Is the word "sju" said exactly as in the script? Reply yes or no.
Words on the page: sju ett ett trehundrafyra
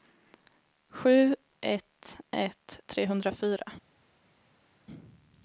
yes